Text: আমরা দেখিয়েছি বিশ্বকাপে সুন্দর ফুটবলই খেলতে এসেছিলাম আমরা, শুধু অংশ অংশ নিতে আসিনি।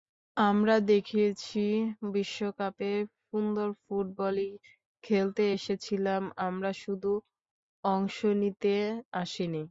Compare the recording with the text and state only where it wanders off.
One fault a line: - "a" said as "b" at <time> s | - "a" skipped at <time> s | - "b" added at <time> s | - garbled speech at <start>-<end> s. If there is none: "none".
- "অংশ" skipped at 8.2 s